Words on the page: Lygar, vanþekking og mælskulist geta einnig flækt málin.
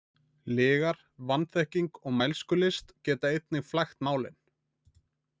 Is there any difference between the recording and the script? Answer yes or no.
no